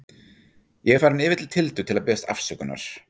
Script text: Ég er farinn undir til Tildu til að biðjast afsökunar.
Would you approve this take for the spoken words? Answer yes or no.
no